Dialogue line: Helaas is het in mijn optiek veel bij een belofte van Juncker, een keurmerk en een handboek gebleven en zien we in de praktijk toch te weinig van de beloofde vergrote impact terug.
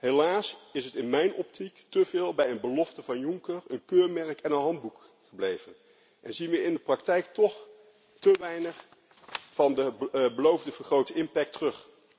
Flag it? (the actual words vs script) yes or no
yes